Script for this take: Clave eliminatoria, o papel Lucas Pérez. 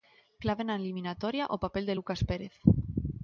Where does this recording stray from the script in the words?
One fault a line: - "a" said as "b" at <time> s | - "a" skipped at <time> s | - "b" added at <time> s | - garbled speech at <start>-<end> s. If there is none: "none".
- "na" added at 0.7 s
- "de" added at 1.9 s